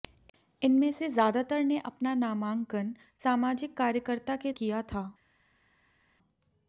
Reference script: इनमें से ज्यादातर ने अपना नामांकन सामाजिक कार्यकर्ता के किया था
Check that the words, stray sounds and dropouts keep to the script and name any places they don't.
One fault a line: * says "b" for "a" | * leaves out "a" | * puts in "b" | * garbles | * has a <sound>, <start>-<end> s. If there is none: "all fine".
all fine